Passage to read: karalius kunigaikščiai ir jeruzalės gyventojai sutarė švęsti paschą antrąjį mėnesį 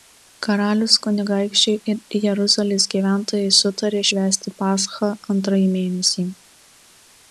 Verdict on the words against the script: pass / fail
pass